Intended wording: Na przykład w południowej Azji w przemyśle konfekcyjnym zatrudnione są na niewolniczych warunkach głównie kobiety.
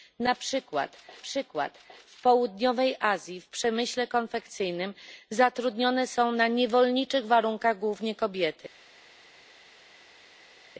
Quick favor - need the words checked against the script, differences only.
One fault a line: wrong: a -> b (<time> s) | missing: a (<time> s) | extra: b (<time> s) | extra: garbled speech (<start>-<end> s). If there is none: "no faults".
extra: przykład (1.2 s)